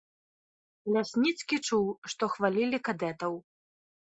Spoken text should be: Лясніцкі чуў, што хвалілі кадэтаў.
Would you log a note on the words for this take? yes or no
no